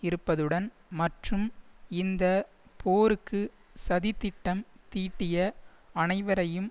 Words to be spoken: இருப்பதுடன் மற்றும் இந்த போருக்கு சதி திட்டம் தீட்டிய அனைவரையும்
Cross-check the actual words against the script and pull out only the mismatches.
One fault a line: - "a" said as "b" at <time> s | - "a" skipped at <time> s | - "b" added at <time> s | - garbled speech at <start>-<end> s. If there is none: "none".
none